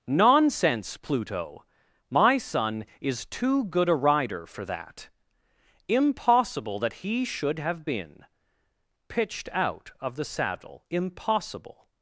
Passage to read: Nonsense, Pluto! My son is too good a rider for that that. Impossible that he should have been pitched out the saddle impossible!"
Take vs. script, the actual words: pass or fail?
fail